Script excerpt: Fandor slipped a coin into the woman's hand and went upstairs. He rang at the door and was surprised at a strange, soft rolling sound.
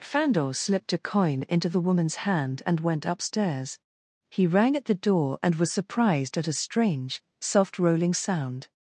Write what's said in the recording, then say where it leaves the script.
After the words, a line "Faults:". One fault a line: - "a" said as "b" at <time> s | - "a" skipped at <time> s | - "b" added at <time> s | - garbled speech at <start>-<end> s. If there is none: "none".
Fandor slipped a coin into the woman's hand and went upstairs. He rang at the door and was surprised at a strange, soft rolling sound.
Faults:
none